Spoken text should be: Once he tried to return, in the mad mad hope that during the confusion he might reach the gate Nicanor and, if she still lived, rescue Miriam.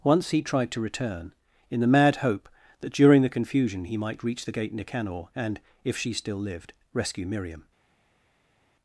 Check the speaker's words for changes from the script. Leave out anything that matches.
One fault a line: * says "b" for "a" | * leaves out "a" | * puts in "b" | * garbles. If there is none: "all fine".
* leaves out "mad"